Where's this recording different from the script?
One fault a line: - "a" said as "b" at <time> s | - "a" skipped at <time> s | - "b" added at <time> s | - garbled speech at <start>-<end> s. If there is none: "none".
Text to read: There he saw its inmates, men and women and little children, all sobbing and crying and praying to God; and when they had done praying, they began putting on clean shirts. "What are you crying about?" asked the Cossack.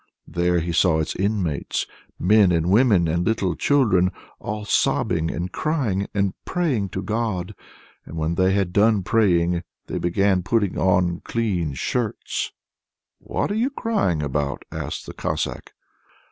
none